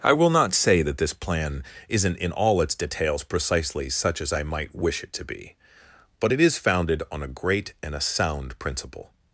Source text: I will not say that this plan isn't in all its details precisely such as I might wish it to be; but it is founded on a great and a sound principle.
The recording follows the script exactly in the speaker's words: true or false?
true